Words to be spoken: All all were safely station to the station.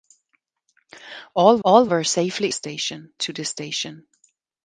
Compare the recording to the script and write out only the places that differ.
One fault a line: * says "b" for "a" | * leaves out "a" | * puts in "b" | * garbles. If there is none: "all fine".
all fine